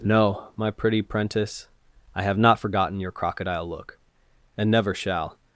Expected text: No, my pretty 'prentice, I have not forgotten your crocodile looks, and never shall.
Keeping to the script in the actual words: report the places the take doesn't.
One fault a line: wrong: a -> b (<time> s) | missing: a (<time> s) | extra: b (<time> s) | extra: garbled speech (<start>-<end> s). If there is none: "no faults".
wrong: looks -> look (3.7 s)